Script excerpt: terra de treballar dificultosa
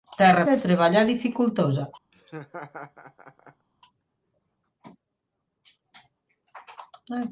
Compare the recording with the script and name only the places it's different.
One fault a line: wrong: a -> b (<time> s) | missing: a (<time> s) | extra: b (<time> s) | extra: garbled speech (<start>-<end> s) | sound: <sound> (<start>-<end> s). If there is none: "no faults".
sound: laugh (2.1-3.7 s)